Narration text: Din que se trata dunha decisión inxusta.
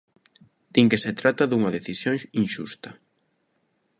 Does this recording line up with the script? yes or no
yes